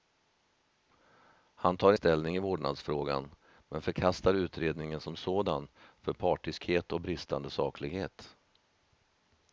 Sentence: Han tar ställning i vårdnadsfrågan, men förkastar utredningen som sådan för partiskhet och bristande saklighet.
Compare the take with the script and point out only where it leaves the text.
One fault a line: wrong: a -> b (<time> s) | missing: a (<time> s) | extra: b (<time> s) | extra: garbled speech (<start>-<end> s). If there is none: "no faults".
no faults